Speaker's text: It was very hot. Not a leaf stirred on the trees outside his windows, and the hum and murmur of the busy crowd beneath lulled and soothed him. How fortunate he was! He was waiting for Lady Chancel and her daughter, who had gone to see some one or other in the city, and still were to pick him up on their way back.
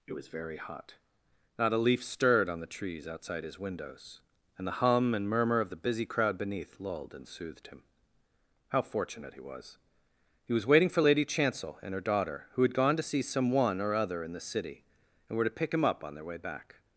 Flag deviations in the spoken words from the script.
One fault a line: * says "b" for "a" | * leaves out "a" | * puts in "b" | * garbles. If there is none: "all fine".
* leaves out "still"